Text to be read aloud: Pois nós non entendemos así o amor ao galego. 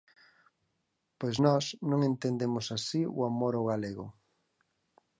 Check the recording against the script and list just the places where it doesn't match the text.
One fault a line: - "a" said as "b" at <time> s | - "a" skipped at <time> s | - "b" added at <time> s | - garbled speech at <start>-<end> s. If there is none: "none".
none